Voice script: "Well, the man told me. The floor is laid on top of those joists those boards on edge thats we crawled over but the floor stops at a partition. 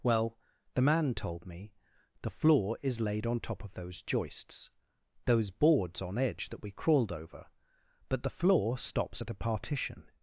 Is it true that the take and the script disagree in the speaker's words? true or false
true